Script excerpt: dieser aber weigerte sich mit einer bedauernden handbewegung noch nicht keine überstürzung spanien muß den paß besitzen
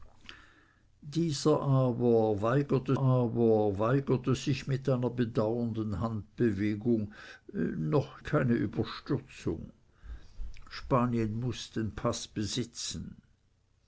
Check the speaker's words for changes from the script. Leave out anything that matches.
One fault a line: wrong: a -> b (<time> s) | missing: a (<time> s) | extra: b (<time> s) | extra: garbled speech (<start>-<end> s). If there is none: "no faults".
extra: aber weigerte (3.0 s)
missing: nicht (8.2 s)